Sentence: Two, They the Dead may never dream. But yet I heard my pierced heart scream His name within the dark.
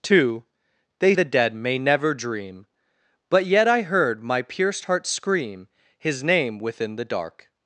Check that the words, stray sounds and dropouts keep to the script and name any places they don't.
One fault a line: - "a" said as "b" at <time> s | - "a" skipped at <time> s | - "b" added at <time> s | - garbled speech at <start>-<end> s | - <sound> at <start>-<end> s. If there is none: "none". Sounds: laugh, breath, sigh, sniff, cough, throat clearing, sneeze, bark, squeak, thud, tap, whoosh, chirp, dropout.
none